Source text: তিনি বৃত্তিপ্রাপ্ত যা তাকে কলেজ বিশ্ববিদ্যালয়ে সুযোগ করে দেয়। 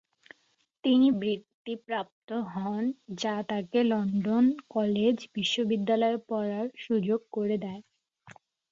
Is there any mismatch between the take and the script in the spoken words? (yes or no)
yes